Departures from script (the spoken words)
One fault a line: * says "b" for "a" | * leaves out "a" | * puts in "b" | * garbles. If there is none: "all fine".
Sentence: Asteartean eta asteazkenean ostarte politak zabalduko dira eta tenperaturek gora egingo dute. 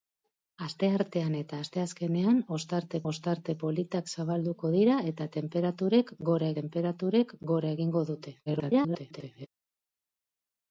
* puts in "ostarte"
* puts in "tenperaturek gora"
* garbles